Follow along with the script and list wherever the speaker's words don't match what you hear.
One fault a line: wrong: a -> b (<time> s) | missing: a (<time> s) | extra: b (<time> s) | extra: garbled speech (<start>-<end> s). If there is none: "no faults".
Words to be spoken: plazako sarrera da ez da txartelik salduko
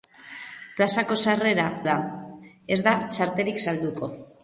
no faults